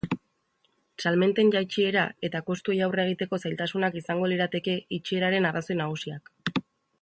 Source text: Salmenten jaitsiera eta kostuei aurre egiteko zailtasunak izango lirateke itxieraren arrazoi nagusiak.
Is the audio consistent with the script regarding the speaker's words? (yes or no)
yes